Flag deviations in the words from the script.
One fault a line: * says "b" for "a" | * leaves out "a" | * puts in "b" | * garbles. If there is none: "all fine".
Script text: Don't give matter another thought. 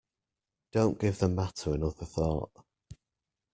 * puts in "the"